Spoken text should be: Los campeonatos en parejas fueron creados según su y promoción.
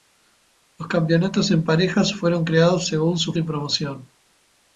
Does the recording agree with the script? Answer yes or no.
yes